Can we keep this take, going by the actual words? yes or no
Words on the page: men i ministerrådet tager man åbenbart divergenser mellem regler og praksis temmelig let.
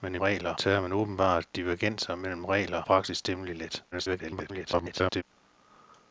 no